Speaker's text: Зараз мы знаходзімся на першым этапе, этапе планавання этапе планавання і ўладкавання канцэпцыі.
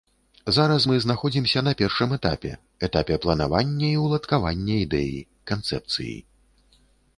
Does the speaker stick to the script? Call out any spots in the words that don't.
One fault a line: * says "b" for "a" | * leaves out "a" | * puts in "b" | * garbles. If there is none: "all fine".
* leaves out "этапе планавання"
* puts in "ідэі"